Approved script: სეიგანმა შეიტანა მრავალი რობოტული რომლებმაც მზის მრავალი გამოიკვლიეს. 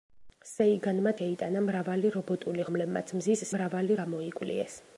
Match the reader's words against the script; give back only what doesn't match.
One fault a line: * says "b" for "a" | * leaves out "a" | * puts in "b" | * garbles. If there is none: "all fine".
all fine